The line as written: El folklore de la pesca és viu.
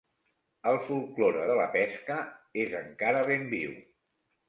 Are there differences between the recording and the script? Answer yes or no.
yes